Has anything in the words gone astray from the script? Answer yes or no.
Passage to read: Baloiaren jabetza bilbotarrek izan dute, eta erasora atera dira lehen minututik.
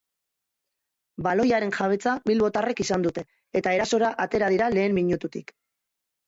no